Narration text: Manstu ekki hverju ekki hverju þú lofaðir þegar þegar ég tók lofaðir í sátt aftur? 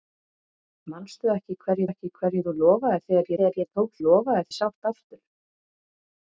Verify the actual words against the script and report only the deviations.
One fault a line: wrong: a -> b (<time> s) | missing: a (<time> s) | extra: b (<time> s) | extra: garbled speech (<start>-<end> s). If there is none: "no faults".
no faults